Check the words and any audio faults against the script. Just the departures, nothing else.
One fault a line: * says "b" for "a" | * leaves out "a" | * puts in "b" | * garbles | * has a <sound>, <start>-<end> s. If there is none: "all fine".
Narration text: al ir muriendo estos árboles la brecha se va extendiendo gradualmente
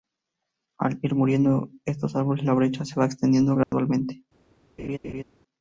* has a dropout, 3.6-3.7 s
* has a laugh, 4.8-5.2 s